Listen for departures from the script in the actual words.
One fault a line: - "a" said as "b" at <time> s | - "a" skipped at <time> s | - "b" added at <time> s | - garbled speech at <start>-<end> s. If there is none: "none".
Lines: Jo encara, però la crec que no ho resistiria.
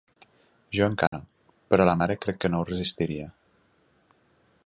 - "mare" added at 2.0 s